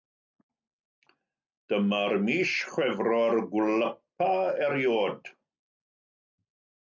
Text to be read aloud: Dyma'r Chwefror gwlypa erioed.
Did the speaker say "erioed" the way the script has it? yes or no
yes